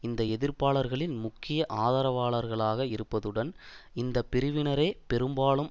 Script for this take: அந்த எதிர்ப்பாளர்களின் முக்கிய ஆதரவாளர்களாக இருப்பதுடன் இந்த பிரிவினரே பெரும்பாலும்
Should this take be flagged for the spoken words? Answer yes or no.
yes